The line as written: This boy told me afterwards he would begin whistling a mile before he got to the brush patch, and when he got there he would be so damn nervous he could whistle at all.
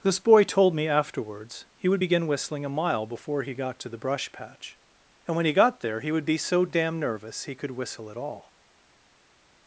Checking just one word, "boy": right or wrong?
right